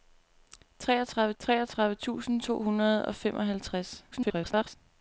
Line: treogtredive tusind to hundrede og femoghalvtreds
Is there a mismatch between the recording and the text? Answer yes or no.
yes